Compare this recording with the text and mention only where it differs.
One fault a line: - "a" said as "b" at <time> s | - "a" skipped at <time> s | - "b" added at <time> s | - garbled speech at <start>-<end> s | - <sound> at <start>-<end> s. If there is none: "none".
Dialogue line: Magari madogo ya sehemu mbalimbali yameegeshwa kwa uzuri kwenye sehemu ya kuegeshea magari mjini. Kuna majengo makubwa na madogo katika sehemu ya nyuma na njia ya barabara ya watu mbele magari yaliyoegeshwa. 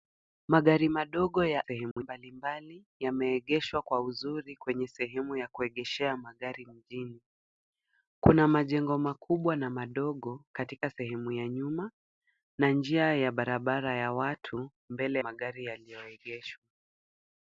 - dropout at 1.9-2.0 s